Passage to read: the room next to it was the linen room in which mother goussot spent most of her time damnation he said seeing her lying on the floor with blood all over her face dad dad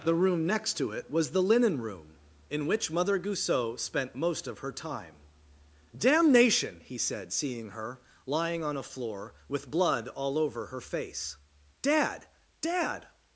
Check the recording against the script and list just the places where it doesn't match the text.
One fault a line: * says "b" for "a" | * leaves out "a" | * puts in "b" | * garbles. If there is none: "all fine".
* says "a" for "the"